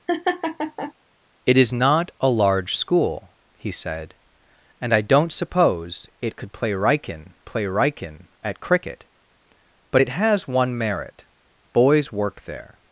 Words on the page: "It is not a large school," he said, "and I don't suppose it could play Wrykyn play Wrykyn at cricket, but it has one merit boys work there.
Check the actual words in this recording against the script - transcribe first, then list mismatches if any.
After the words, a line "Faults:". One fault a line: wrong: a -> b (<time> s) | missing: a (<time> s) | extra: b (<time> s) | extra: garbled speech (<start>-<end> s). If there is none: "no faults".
"It is not a large school," he said, "and I don't suppose it could play Wrykyn play Wrykyn at cricket, but it has one merit boys work there.
Faults:
no faults